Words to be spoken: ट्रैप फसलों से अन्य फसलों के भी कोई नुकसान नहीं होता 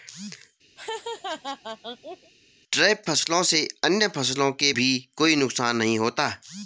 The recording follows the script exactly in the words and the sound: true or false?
false